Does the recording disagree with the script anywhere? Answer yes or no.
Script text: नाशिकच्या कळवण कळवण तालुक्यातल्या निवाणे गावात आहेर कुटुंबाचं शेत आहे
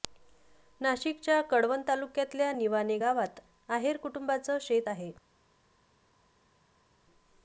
yes